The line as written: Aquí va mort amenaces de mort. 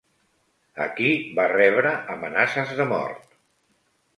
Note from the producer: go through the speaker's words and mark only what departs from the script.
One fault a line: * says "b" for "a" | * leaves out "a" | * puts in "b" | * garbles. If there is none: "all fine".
* says "rebre" for "mort"